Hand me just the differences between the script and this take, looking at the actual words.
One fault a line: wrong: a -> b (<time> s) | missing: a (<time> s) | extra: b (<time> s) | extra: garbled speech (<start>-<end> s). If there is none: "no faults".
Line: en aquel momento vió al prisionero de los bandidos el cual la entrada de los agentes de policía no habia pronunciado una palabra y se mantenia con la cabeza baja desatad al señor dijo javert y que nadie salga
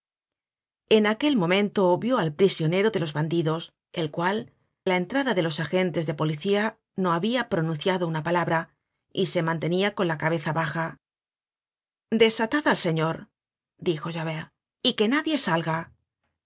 no faults